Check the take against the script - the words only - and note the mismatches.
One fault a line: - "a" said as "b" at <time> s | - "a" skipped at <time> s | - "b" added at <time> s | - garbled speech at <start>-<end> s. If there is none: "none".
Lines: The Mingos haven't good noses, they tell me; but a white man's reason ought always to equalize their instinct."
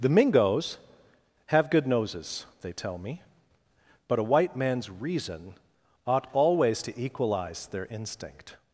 - "haven't" said as "have" at 1.4 s